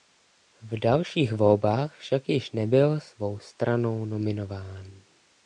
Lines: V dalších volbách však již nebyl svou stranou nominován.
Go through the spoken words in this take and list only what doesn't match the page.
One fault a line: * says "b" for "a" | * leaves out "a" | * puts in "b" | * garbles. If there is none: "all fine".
all fine